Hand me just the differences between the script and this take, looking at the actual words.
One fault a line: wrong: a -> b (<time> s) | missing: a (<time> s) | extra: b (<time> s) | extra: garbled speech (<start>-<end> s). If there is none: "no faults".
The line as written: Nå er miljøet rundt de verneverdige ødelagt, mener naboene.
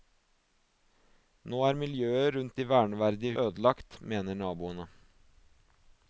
no faults